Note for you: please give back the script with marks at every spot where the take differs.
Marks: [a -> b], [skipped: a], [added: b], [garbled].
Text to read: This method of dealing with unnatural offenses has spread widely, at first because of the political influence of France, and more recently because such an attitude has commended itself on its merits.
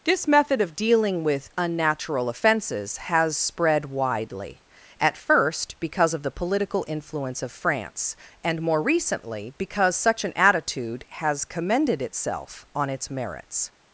This method of dealing with unnatural offenses has spread widely, at first because of the political influence of France, and more recently because such an attitude has commended itself on its merits.